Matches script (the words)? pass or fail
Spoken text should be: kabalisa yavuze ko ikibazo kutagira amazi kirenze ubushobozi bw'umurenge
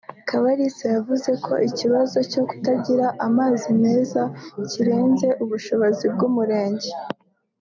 fail